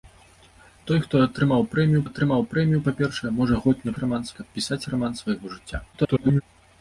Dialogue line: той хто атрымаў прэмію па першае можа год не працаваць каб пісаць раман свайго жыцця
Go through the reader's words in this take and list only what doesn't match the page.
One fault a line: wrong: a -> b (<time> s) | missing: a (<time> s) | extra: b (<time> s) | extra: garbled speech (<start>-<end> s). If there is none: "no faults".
extra: атрымаў прэмію (2.1 s)
wrong: працаваць -> раман (4.0 s)
extra: garbled speech (5.9-6.4 s)